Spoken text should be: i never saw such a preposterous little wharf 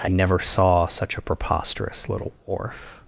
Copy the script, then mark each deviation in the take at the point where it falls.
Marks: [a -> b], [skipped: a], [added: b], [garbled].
i never saw such a preposterous little wharf